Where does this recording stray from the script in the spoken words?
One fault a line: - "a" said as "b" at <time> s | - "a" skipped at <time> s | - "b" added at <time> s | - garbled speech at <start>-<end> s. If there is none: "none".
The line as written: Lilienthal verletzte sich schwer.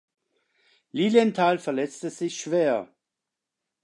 none